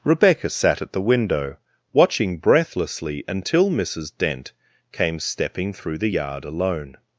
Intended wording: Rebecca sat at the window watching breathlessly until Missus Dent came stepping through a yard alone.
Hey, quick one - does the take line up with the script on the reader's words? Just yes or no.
no